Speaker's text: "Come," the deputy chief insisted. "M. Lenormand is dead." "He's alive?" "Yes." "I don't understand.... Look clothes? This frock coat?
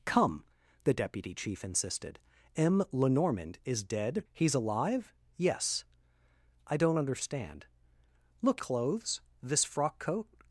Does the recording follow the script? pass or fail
pass